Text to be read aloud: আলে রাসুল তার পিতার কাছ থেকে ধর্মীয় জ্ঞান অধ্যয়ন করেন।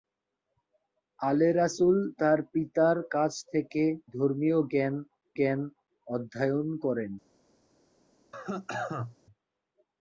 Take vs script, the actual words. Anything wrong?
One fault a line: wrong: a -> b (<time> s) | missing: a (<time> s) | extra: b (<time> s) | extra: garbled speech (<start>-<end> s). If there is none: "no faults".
extra: জ্ঞান (5.4 s)